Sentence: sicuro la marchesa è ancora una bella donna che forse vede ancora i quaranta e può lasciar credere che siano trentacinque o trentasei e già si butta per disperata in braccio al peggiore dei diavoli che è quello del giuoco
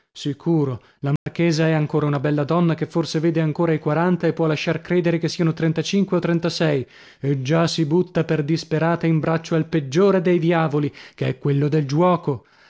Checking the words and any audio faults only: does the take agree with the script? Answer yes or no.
no